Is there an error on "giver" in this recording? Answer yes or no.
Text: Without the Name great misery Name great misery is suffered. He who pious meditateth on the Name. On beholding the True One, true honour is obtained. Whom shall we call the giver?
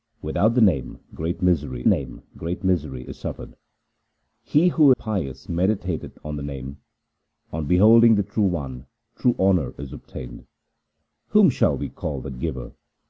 no